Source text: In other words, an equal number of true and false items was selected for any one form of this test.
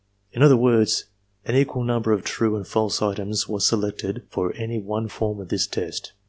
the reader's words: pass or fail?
pass